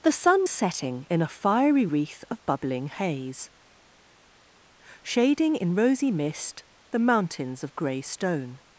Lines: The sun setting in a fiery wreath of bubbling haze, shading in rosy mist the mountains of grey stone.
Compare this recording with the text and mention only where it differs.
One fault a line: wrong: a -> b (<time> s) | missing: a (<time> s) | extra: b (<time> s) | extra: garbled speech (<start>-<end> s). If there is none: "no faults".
no faults